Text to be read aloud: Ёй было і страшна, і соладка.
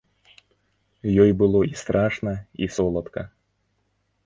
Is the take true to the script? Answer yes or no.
yes